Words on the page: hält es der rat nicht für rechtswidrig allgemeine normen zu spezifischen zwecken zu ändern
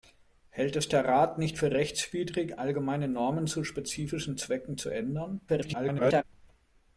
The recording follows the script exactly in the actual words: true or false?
false